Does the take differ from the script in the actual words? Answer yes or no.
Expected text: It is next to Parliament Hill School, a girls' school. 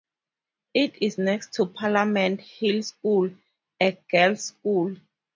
no